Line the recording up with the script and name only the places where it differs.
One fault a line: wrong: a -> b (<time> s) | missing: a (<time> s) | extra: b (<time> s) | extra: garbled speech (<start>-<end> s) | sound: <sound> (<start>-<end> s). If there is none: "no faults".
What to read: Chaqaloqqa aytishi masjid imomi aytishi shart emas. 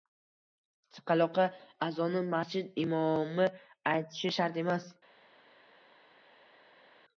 wrong: aytishi -> azonni (1.9 s)